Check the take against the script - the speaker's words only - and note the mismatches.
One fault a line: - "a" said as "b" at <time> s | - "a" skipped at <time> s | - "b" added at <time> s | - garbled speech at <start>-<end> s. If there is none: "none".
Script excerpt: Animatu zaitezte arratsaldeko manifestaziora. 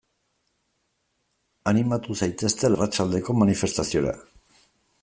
none